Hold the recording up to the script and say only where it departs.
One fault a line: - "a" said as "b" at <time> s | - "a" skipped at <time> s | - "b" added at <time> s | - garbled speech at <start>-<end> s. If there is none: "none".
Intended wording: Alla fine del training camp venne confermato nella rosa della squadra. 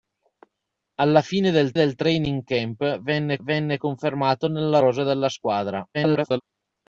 - "del" added at 1.7 s
- "venne" added at 3.4 s
- garbled speech at 5.9-6.4 s